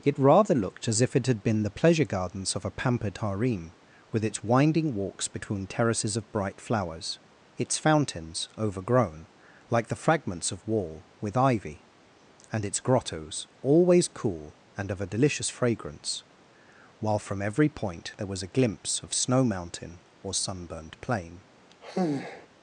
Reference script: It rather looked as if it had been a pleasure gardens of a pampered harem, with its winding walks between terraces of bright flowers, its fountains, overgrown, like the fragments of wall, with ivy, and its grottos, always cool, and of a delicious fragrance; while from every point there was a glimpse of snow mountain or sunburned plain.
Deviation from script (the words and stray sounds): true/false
true